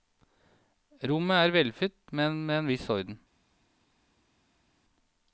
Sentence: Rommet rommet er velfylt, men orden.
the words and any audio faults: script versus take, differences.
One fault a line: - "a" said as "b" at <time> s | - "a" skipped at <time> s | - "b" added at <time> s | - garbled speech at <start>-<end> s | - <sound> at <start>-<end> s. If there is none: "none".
- "rommet" skipped at 1.4 s
- "med en viss" added at 2.5 s